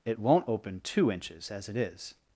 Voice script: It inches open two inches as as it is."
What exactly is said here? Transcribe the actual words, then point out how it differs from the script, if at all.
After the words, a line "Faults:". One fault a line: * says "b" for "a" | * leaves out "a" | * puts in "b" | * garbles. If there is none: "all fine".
It won't open two inches as it is."
Faults:
* says "won't" for "inches"
* leaves out "as"